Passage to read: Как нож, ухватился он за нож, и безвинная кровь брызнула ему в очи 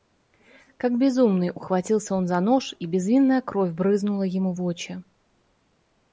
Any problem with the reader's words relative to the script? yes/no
yes